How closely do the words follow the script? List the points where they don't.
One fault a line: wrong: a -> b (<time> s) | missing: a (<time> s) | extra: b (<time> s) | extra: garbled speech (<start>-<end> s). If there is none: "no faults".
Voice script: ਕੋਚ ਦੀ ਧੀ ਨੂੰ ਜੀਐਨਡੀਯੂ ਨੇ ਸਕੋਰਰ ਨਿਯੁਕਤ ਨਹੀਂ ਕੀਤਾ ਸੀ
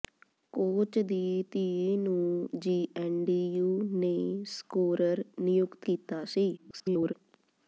missing: ਨਹੀਂ (5.9 s)
extra: garbled speech (6.6-7.1 s)